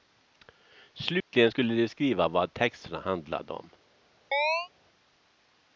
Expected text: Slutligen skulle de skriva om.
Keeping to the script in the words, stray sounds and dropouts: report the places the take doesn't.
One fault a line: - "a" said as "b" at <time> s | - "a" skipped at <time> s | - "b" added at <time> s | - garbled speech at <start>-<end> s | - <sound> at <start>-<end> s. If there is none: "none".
- dropout at 1.2-1.3 s
- "vad texterna handlade" added at 2.3 s
- chirp at 4.3-4.7 s